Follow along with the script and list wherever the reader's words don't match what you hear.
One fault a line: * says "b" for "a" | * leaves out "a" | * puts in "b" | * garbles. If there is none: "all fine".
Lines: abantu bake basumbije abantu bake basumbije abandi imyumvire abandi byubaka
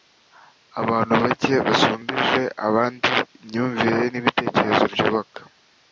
* leaves out "abantu bake basumbije"
* says "n'ibitekerezo" for "abandi"